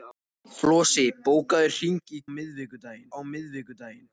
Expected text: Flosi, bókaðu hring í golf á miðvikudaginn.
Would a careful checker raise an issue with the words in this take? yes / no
yes